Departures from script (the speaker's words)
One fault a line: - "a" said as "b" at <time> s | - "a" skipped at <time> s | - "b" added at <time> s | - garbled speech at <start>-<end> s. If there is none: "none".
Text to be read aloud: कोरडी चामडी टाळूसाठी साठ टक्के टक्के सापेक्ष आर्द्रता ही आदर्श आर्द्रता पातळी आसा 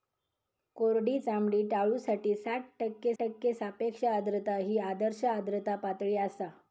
none